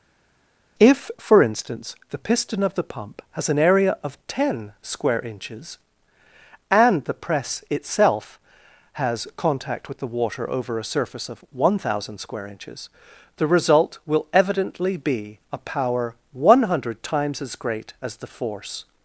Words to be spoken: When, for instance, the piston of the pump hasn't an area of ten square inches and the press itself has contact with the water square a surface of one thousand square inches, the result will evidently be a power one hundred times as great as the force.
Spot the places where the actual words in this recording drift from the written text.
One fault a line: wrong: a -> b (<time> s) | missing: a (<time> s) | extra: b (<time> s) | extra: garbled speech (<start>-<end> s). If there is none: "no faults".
wrong: When -> If (0.8 s)
wrong: hasn't -> has (3.3 s)
wrong: square -> over (10.5 s)